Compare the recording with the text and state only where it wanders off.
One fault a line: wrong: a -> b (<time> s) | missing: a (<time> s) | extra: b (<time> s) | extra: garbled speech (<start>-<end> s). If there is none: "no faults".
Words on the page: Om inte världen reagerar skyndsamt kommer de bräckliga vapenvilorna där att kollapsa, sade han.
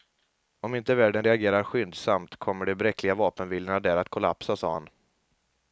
no faults